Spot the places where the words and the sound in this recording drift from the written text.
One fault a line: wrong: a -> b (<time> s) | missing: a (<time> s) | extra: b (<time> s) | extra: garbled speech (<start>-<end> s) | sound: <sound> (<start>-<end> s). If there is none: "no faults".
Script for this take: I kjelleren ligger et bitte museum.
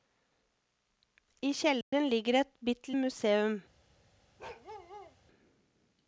sound: dropout (1.8-1.9 s)
sound: bark (4.4-5.2 s)